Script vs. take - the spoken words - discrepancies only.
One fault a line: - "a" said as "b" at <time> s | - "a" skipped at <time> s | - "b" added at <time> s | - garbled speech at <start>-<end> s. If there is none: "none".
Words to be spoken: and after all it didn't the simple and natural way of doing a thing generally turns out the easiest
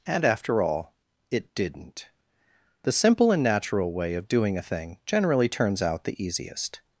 none